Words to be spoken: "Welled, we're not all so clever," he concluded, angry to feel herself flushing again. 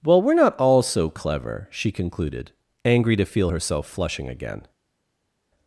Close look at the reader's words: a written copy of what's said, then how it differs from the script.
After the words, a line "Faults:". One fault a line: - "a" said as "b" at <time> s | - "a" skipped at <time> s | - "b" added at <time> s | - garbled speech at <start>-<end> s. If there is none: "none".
"Well, we're not all so clever," she concluded, angry to feel herself flushing again.
Faults:
- "Welled" said as "Well" at 0.0 s
- "he" said as "she" at 1.7 s